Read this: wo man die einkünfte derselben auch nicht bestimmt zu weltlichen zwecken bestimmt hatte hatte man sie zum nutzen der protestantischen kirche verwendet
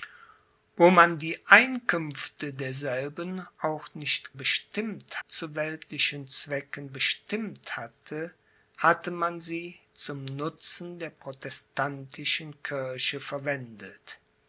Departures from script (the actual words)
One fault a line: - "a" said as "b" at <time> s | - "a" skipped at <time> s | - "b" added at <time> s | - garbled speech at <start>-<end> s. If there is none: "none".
none